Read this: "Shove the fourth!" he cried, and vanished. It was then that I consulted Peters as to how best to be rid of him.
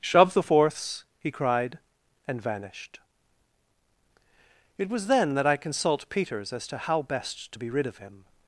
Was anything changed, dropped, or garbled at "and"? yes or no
no